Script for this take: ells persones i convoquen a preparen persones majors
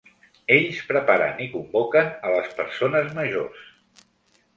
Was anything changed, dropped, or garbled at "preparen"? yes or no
yes